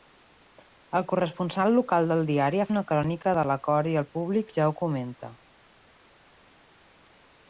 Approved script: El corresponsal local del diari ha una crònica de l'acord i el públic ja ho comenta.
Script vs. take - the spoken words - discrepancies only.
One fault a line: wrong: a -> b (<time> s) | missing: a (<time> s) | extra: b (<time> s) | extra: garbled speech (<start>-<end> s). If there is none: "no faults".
no faults